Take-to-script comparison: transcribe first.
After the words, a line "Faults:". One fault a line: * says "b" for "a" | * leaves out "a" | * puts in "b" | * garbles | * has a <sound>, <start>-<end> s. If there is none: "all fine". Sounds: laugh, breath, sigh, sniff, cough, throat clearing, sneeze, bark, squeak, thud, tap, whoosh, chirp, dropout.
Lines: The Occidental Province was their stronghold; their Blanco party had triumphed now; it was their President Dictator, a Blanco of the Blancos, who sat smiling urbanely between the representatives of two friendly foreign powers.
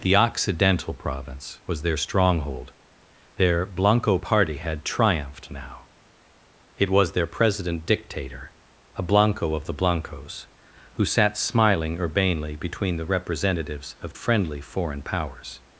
The Occidental Province was their stronghold; their Blanco party had triumphed now; it was their President Dictator, a Blanco of the Blancos, who sat smiling urbanely between the representatives of friendly foreign powers.
Faults:
* leaves out "two"